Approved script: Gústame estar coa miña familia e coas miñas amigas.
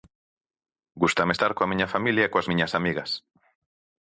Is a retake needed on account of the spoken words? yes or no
no